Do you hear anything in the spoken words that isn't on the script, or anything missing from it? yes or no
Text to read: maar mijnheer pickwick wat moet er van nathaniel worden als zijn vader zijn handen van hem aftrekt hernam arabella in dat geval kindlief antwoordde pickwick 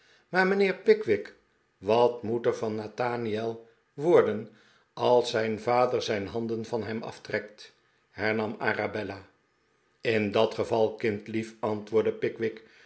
no